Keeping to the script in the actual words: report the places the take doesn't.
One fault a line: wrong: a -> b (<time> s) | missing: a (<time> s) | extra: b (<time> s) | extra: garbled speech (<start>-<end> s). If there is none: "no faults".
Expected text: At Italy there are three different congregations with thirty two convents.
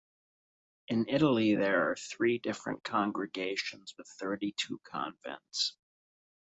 wrong: At -> In (0.9 s)